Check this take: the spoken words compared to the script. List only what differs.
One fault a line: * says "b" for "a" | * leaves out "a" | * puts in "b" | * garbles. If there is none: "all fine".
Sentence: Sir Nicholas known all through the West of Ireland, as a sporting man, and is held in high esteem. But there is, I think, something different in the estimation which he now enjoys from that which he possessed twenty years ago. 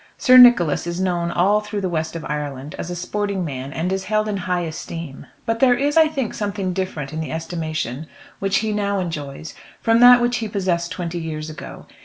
* puts in "is"